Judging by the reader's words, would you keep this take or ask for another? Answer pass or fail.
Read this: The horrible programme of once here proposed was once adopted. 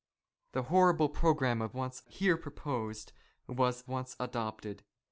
pass